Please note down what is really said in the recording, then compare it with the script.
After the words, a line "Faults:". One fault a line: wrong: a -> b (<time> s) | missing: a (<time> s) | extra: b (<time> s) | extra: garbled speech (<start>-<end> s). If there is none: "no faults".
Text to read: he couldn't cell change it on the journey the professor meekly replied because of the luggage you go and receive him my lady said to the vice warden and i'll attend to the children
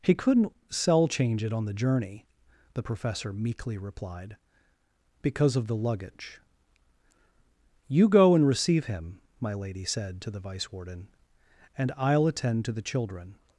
he couldn't cell change it on the journey the professor meekly replied because of the luggage you go and receive him my lady said to the vice warden and i'll attend to the children
Faults:
no faults